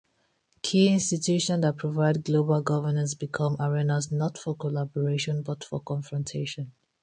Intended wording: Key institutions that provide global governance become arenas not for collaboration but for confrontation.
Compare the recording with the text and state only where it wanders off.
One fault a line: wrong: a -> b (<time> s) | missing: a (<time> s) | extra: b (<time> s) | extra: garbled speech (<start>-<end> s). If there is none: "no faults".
no faults